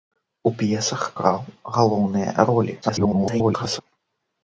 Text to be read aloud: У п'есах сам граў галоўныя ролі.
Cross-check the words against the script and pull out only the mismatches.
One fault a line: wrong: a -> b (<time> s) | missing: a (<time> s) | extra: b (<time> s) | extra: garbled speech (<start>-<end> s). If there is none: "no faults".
missing: сам (1.0 s)
extra: garbled speech (2.8-3.8 s)